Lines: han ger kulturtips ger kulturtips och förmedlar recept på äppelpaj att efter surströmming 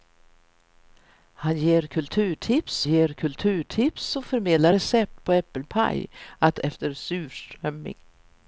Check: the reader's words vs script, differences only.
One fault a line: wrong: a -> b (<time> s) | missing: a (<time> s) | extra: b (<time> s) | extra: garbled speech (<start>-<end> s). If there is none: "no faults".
no faults